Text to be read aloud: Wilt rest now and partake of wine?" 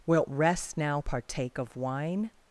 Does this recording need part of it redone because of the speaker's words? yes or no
yes